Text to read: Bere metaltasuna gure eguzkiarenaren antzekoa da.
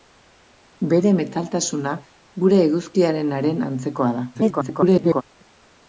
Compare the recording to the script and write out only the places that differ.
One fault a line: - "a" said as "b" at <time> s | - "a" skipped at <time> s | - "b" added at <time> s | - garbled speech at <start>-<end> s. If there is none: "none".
- garbled speech at 4.3-5.2 s